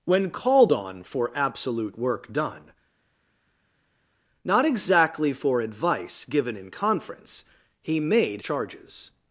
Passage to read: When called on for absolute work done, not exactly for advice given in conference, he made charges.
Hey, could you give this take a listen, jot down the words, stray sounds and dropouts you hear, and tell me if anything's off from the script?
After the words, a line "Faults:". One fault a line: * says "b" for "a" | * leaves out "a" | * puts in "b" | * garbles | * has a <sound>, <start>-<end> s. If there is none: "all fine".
When called on for absolute work done, not exactly for advice given in conference, he made charges.
Faults:
all fine